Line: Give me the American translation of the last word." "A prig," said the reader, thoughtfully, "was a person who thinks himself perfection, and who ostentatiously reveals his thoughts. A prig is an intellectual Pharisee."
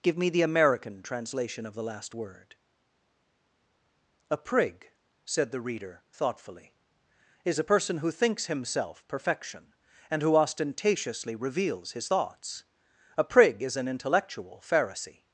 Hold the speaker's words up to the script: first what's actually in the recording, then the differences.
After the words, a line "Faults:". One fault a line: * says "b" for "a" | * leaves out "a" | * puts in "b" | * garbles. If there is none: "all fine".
Give me the American translation of the last word." "A prig," said the reader, thoughtfully, "is a person who thinks himself perfection, and who ostentatiously reveals his thoughts. A prig is an intellectual Pharisee."
Faults:
* says "is" for "was"